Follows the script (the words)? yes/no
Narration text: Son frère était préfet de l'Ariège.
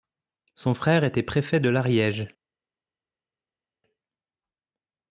yes